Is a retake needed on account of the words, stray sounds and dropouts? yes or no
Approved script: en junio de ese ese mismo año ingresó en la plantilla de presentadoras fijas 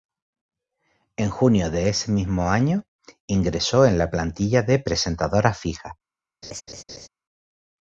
yes